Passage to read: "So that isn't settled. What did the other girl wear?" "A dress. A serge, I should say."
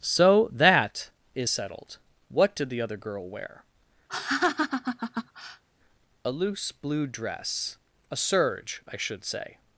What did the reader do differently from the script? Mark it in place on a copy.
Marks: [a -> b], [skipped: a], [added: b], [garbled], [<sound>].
"So that [isn't -> is] settled. What did the other girl wear?" [laugh] "A [added: loose blue] dress. A serge, I should say."